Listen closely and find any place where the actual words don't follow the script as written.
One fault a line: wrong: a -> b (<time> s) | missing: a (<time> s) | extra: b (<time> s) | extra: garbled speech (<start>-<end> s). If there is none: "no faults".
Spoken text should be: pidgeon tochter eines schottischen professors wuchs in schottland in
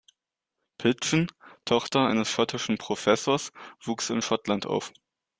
wrong: in -> auf (4.7 s)